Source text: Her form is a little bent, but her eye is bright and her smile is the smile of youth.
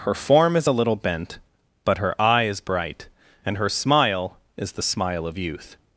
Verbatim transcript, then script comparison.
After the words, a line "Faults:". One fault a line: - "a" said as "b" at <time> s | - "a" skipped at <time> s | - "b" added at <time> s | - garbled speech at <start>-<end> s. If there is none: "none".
Her form is a little bent, but her eye is bright and her smile is the smile of youth.
Faults:
none